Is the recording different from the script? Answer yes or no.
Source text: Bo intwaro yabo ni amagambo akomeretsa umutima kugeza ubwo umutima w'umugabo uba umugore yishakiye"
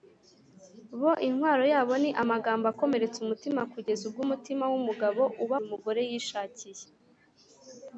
no